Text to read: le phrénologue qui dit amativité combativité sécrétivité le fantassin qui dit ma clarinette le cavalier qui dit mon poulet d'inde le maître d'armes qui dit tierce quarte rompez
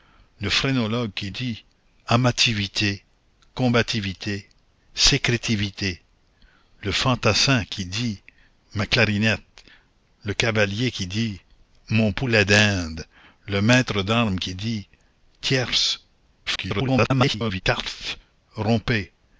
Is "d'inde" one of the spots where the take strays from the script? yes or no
no